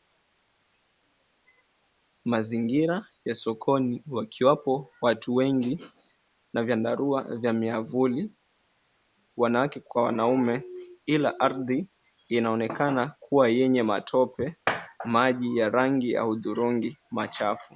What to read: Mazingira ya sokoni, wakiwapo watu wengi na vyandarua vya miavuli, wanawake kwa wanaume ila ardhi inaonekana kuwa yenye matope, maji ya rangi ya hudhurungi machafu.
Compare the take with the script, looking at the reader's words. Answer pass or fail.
pass